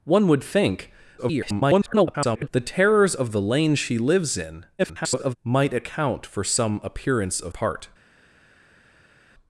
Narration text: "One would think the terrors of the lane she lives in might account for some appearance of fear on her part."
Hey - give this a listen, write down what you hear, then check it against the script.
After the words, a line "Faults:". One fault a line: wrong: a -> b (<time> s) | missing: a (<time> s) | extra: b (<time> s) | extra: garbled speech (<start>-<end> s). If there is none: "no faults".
"One would think [garbled] the terrors of the lane she lives in [garbled] might account for some appearance of part."
Faults:
extra: garbled speech (1.2-2.5 s)
extra: garbled speech (4.8-5.4 s)
missing: fear on her (7.5 s)